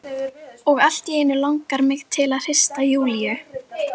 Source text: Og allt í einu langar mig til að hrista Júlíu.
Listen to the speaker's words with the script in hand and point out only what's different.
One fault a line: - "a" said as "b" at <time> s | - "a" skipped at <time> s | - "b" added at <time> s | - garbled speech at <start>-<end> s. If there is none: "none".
none